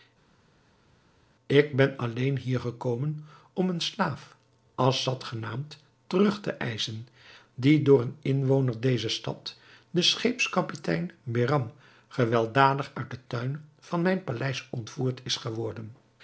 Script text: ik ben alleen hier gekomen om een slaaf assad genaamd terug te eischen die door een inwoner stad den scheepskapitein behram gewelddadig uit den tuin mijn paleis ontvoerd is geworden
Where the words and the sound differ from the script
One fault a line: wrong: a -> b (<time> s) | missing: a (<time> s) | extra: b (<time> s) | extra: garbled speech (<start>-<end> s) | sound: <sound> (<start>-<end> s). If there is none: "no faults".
extra: dezer (8.8 s)
extra: van (13.8 s)